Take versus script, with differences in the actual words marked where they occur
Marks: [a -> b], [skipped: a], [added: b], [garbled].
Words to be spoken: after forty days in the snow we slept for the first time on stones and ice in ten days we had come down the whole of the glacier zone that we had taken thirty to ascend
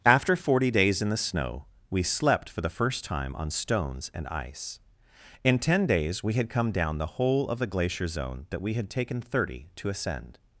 after forty days in the snow we slept for the first time on stones and ice in ten days we had come down the whole of the glacier zone that we had taken thirty to ascend